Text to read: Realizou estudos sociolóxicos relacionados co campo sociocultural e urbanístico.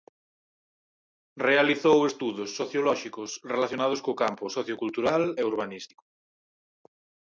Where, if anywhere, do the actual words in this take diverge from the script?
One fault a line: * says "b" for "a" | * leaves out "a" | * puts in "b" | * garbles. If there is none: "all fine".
all fine